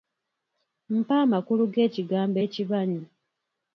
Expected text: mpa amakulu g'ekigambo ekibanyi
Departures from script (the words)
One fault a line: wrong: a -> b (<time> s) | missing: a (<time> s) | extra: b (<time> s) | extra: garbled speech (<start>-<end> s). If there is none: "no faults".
no faults